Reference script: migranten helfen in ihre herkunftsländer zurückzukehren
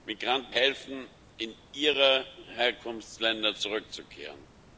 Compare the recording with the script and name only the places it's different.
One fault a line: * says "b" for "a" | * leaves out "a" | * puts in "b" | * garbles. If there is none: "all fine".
all fine